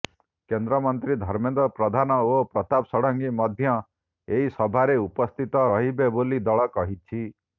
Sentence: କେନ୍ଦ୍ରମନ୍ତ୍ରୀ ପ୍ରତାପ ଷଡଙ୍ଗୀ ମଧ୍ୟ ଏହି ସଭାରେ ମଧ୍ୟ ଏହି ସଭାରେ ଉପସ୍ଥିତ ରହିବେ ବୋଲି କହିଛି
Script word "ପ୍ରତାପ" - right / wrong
wrong